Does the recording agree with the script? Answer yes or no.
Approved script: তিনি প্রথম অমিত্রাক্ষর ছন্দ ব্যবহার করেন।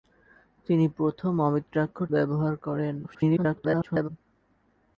no